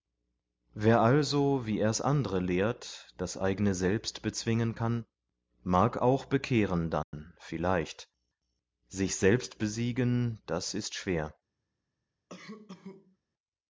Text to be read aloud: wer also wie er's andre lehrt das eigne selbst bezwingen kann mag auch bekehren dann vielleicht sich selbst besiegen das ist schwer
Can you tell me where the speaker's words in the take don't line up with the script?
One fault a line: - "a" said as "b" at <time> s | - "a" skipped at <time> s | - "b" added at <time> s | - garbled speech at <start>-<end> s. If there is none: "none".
none